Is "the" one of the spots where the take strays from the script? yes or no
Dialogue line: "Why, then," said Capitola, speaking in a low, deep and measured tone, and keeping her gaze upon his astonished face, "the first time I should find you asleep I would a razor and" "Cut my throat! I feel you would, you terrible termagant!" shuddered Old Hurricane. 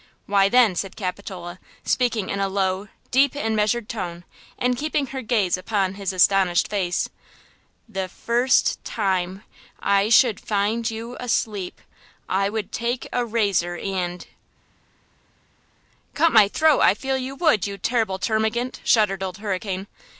no